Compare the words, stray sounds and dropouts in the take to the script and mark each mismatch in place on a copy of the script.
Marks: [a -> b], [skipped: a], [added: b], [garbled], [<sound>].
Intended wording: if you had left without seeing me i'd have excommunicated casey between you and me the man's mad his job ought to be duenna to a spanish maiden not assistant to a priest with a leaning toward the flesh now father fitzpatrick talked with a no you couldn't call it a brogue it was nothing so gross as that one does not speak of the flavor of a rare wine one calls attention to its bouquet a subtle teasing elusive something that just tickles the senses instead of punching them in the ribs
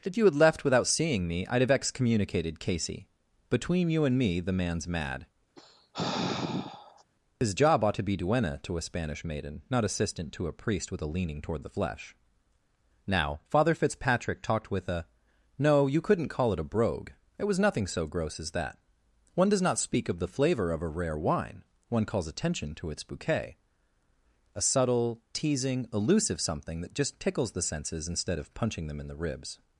if you had left without seeing me i'd have excommunicated casey between you and me the man's mad [sigh] his job ought to be duenna to a spanish maiden not assistant to a priest with a leaning toward the flesh now father fitzpatrick talked with a no you couldn't call it a brogue it was nothing so gross as that one does not speak of the flavor of a rare wine one calls attention to its bouquet a subtle teasing elusive something that just tickles the senses instead of punching them in the ribs